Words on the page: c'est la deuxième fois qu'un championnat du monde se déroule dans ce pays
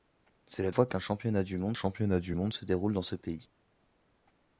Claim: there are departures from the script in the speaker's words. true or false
true